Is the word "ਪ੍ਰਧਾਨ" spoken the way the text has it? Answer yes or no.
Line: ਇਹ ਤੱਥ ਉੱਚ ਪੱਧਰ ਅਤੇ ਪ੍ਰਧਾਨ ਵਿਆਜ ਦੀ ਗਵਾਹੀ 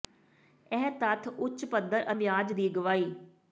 no